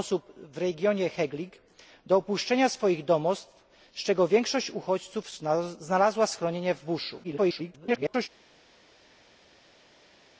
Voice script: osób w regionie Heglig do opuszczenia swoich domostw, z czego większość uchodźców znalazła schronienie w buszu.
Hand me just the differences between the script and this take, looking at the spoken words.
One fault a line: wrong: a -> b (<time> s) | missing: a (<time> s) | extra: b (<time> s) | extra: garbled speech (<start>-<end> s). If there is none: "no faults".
extra: garbled speech (7.2-8.3 s)